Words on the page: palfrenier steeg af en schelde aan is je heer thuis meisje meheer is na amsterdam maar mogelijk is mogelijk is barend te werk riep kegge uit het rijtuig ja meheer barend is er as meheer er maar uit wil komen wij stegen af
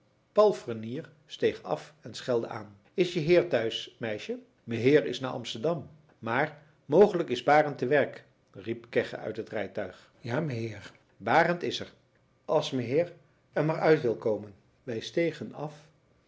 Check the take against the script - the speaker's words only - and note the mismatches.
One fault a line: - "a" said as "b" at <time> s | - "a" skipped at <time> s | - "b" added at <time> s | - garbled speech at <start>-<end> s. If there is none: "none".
- "mogelijk is" skipped at 7.4 s